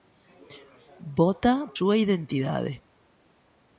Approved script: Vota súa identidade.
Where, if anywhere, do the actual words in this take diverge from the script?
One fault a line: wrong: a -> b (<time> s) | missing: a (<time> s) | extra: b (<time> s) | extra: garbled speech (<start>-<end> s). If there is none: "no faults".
no faults